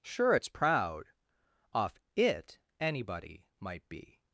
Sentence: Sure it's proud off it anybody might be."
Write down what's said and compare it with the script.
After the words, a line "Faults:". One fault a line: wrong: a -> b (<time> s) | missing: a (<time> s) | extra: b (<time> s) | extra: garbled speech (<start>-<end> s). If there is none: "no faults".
Sure it's proud off it anybody might be."
Faults:
no faults